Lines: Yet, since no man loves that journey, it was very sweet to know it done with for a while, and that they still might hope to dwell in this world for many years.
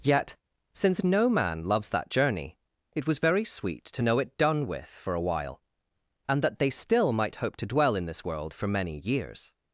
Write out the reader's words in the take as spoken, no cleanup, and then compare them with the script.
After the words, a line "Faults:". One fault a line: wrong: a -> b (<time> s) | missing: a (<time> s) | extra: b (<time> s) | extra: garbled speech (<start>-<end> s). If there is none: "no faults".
Yet, since no man loves that journey, it was very sweet to know it done with for a while, and that they still might hope to dwell in this world for many years.
Faults:
no faults